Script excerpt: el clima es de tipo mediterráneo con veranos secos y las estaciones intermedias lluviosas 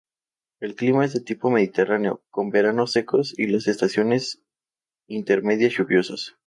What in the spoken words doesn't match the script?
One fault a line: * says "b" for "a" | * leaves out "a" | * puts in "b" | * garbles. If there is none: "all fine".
all fine